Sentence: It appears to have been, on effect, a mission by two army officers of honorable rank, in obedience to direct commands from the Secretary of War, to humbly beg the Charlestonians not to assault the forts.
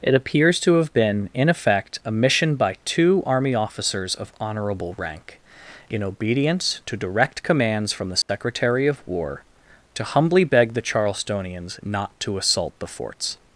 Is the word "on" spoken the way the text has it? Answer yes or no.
no